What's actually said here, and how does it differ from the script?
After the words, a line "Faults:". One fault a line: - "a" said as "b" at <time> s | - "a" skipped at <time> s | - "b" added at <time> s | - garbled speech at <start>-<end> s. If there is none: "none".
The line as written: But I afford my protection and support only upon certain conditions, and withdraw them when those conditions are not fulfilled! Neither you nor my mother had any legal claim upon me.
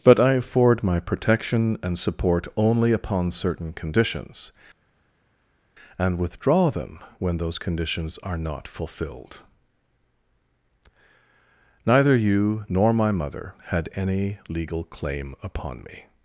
But I afford my protection and support only upon certain conditions, and withdraw them when those conditions are not fulfilled! Neither you nor my mother had any legal claim upon me.
Faults:
none